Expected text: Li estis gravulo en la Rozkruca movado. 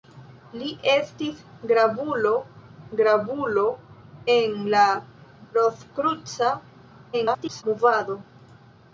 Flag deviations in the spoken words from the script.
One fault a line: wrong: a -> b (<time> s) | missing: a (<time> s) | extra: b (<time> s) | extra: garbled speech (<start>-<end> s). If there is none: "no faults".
extra: gravulo (3.0 s)
extra: garbled speech (7.1-7.6 s)